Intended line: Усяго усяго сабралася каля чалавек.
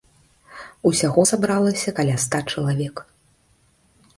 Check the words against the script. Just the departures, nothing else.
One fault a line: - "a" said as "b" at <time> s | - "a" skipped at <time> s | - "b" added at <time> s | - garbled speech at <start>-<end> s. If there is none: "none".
- "усяго" skipped at 1.2 s
- "ста" added at 2.3 s